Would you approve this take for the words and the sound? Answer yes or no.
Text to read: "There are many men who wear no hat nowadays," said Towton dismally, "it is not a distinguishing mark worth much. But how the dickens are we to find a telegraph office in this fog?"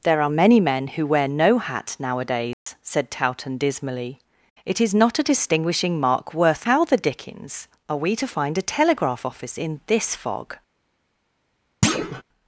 no